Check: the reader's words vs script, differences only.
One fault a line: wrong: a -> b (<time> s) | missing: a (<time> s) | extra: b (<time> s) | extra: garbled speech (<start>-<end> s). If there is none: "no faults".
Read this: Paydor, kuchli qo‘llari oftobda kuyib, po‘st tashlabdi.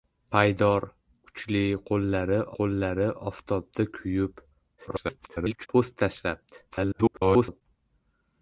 extra: qo‘llari (2.6 s)
extra: garbled speech (4.8-5.7 s)
extra: garbled speech (6.7-7.6 s)